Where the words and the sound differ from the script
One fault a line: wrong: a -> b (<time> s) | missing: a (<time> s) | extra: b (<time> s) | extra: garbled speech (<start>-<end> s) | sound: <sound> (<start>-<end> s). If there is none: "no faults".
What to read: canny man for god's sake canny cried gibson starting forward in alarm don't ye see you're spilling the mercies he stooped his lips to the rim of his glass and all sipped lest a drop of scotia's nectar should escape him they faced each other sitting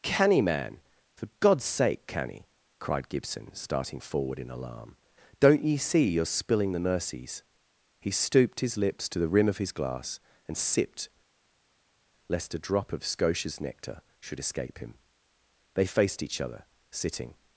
missing: all (10.6 s)